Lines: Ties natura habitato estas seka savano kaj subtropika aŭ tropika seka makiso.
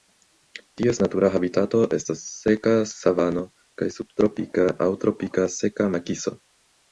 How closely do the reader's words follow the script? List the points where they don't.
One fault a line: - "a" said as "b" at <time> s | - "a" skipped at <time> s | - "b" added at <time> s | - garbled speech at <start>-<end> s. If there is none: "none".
none